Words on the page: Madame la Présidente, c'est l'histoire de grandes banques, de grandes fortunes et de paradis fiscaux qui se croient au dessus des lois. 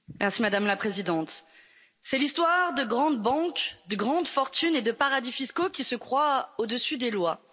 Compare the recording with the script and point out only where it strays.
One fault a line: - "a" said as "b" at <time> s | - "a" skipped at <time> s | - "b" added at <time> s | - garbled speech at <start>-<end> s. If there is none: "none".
none